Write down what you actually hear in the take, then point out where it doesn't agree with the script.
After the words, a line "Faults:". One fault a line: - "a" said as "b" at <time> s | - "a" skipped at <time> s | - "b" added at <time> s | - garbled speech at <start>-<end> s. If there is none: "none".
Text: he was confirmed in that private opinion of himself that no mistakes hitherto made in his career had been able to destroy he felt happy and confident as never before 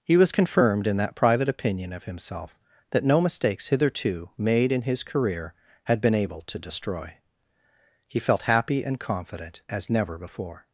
he was confirmed in that private opinion of himself that no mistakes hitherto made in his career had been able to destroy he felt happy and confident as never before
Faults:
none